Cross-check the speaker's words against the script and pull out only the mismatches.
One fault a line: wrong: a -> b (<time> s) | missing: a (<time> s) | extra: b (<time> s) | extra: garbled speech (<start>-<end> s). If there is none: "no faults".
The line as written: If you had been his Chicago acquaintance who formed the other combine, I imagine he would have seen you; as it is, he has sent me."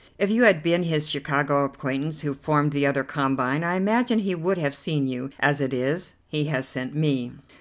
no faults